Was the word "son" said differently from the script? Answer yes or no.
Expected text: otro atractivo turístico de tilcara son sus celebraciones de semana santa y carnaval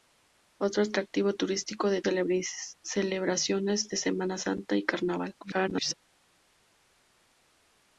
yes